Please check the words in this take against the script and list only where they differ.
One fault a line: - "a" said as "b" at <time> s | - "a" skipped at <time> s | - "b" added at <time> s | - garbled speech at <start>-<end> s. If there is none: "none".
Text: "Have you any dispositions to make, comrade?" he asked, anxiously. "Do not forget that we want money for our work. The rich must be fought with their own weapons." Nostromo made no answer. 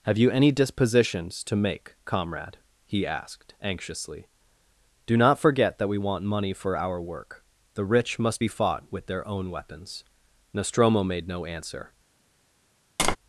none